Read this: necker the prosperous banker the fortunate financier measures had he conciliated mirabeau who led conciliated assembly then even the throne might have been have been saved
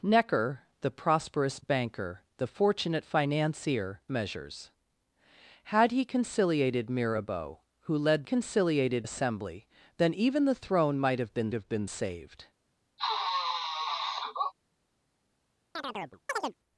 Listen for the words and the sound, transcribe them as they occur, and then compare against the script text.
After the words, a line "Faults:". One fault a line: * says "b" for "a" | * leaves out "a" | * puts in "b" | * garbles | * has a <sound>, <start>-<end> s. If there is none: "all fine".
necker the prosperous banker the fortunate financier measures had he conciliated mirabeau who led conciliated assembly then even the throne might have been have been saved
Faults:
* has a sniff, 13.0-14.5 s
* has a chirp, 15.8-16.6 s